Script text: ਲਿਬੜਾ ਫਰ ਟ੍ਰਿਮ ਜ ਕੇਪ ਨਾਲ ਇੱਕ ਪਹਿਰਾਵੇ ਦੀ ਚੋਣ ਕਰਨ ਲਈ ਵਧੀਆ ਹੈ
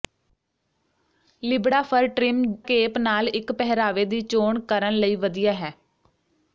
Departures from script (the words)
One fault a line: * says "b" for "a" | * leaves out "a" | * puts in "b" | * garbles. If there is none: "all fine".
* leaves out "ਜ"